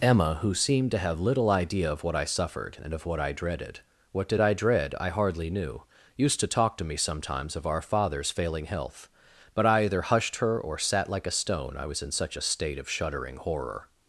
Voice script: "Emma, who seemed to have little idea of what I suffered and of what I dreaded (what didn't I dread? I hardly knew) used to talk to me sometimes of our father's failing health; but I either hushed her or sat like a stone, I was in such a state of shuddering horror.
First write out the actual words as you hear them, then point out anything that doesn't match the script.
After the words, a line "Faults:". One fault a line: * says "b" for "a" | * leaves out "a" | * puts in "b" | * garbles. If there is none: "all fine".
"Emma, who seemed to have little idea of what I suffered and of what I dreaded (what did I dread? I hardly knew) used to talk to me sometimes of our father's failing health; but I either hushed her or sat like a stone, I was in such a state of shuddering horror.
Faults:
* says "did" for "didn't"